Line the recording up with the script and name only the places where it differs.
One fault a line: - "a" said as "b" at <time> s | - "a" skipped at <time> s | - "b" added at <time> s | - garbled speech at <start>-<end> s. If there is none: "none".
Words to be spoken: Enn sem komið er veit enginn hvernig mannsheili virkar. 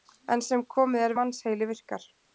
- "veit enginn hvernig" skipped at 1.1 s